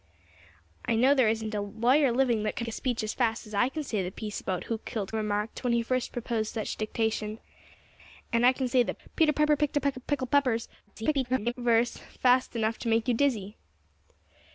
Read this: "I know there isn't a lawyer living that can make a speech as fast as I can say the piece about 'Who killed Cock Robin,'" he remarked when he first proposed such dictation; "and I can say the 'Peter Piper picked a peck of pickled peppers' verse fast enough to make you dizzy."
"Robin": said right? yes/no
no